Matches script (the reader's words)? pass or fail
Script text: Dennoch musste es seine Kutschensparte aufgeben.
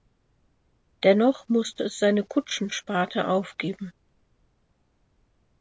pass